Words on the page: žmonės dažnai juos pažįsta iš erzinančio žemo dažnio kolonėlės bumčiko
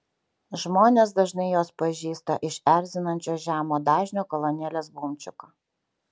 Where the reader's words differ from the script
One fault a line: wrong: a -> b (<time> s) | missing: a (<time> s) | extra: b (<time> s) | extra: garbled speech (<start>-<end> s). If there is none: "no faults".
no faults